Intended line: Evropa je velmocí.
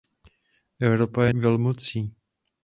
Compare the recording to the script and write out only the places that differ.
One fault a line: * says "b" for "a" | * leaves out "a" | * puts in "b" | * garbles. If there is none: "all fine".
all fine